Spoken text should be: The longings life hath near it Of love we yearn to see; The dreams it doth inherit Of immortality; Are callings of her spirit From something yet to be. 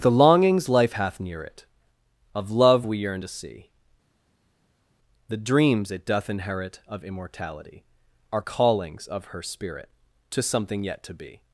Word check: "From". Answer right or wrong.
wrong